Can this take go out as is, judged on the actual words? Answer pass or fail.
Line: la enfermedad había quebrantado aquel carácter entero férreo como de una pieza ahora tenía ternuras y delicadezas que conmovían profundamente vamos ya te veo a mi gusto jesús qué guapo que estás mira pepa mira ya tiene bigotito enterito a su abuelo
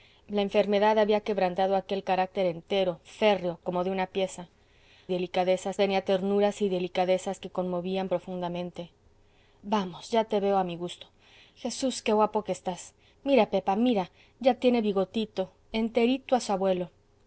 fail